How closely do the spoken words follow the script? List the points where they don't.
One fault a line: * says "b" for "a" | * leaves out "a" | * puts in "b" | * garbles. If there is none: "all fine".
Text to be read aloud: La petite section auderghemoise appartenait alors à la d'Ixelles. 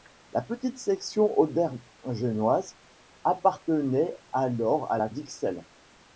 all fine